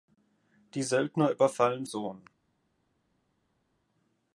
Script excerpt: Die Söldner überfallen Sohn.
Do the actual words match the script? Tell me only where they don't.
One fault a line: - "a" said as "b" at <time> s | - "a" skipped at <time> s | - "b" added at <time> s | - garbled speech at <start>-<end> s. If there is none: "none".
none